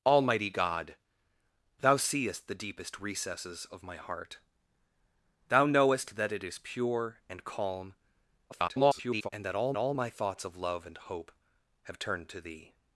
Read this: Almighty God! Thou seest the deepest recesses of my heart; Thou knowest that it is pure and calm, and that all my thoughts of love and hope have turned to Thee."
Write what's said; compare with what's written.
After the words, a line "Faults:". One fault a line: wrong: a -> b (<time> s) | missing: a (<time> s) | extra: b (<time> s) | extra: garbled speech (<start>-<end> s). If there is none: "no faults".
Almighty God! Thou seest the deepest recesses of my heart; Thou knowest that it is pure and calm, [garbled] and that all all my thoughts of love and hope have turned to Thee."
Faults:
extra: garbled speech (8.5-9.3 s)
extra: all (9.8 s)